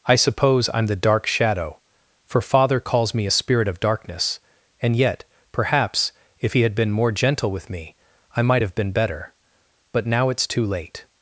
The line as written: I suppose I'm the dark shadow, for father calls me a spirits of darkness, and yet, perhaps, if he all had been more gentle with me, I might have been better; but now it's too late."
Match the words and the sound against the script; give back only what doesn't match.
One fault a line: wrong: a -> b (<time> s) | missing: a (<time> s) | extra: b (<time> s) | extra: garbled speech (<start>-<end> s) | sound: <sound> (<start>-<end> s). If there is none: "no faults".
wrong: spirits -> spirit (3.3 s)
missing: all (6.6 s)